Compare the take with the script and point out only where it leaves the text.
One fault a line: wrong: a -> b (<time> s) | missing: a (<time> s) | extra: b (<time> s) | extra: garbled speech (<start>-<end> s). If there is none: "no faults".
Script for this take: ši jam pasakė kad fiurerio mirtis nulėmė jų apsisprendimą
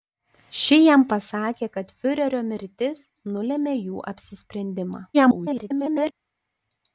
extra: garbled speech (5.1-6.1 s)